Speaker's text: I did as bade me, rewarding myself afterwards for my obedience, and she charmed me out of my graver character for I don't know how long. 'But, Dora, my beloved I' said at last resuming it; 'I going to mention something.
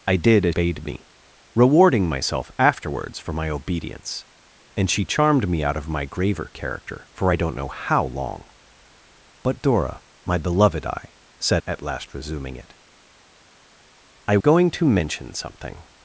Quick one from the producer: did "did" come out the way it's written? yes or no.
yes